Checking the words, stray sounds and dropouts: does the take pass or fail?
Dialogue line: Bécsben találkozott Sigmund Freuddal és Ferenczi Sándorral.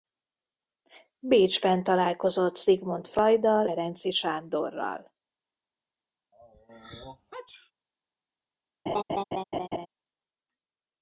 fail